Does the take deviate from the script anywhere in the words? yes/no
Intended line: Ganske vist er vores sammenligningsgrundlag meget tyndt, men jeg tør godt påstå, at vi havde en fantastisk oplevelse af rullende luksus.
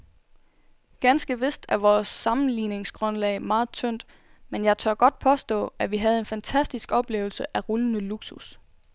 no